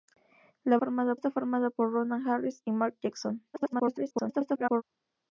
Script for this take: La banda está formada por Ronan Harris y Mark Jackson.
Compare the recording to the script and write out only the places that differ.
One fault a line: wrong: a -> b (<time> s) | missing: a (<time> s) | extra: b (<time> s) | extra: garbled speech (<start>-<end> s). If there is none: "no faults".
wrong: banda -> formada (0.8 s)
extra: garbled speech (3.5-4.8 s)